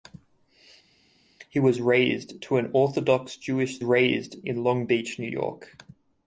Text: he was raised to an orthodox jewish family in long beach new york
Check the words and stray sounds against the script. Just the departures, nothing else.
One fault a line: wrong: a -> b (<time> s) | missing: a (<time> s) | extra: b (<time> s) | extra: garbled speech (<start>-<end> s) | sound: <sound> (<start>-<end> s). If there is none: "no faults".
wrong: family -> raised (3.8 s)